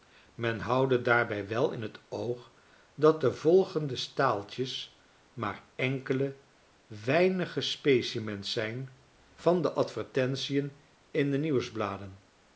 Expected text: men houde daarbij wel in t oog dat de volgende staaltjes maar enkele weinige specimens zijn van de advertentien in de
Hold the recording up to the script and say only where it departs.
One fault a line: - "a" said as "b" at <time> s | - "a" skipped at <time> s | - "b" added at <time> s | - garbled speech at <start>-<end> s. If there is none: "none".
none